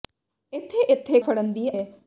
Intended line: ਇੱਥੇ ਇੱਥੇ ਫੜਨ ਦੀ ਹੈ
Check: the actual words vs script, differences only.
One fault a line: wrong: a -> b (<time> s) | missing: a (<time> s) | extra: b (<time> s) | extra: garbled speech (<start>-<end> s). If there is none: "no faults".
no faults